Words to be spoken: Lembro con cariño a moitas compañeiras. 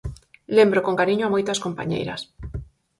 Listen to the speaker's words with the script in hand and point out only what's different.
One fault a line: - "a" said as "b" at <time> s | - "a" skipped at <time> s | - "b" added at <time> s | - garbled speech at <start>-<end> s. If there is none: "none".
none